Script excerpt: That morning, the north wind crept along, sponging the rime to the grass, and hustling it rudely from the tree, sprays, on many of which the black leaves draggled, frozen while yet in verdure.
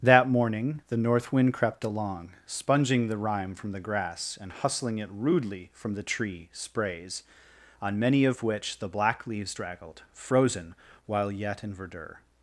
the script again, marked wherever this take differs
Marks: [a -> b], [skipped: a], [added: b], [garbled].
That morning, the north wind crept along, sponging the rime [to -> from] the grass, and hustling it rudely from the tree, sprays, on many of which the black leaves draggled, frozen while yet in verdure.